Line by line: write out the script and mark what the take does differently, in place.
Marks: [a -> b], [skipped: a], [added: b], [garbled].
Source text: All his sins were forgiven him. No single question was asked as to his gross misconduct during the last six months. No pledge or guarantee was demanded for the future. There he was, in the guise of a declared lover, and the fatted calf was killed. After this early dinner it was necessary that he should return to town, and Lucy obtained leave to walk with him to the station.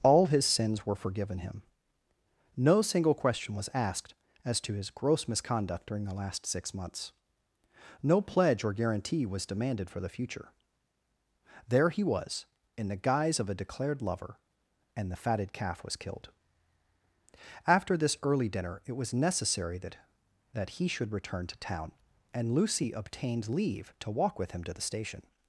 All his sins were forgiven him. No single question was asked as to his gross misconduct during the last six months. No pledge or guarantee was demanded for the future. There he was, in the guise of a declared lover, and the fatted calf was killed. After this early dinner it was necessary that [added: that] he should return to town, and Lucy obtained leave to walk with him to the station.